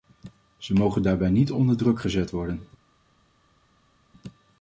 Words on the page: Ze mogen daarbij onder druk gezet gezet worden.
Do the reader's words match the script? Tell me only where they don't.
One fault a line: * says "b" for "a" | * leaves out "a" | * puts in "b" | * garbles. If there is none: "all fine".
* puts in "niet"
* leaves out "gezet"